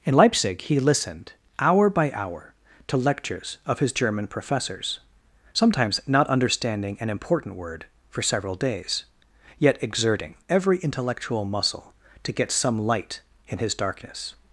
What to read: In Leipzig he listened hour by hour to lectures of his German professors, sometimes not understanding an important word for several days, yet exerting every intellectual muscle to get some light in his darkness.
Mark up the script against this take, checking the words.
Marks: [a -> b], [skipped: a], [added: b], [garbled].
In Leipzig he listened hour by hour to lectures of his German professors, sometimes not understanding an important word for several days, yet exerting every intellectual muscle to get some light in his darkness.